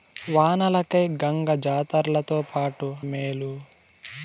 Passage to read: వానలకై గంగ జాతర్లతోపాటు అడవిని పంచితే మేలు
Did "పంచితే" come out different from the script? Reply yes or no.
yes